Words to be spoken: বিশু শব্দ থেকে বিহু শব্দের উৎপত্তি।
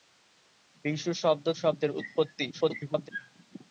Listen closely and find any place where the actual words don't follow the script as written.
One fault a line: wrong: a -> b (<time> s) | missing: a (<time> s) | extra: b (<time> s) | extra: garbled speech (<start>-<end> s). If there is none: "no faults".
missing: থেকে বিহু (1.4 s)
extra: garbled speech (2.5-3.1 s)